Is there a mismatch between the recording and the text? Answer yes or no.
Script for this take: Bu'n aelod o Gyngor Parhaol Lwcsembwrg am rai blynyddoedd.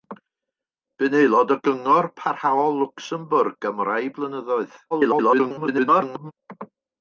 yes